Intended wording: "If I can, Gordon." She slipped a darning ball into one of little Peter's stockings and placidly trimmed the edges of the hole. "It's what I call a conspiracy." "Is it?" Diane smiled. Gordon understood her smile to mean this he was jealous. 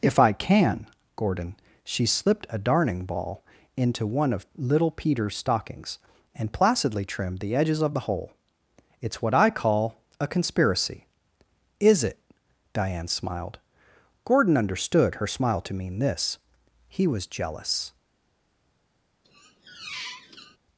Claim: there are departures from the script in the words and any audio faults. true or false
true